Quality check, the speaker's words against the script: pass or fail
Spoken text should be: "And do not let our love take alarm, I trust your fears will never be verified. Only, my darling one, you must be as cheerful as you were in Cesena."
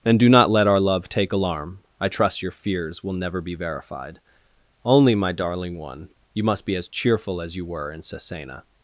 pass